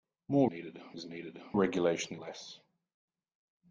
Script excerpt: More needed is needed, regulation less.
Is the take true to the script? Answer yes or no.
yes